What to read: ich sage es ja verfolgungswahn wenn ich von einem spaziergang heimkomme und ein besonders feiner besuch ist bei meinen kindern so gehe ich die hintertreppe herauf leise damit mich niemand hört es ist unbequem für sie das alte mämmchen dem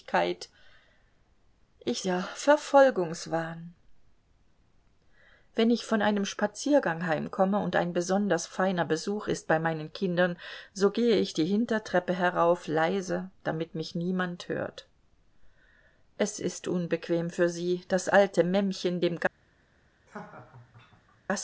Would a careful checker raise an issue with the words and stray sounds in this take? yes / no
yes